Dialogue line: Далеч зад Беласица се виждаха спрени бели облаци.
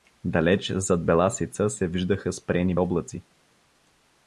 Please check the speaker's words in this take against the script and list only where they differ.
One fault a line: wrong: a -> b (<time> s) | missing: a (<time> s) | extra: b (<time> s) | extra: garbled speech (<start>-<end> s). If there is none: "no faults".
missing: бели (2.8 s)